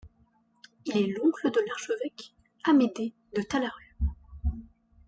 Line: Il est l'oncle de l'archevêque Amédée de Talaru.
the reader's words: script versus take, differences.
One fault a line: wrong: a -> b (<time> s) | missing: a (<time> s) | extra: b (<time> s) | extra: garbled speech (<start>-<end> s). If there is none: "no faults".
no faults